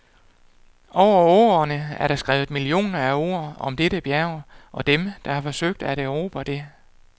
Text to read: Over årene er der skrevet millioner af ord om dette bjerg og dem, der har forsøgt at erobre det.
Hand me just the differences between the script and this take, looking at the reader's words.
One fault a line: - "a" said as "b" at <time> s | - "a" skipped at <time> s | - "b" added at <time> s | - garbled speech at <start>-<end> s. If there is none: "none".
none